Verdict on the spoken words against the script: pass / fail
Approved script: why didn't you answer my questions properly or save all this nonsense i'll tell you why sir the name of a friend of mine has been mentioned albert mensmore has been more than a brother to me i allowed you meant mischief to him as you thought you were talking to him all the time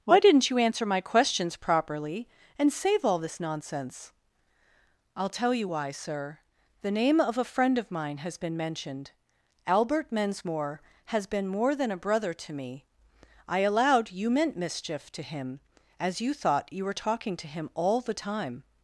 fail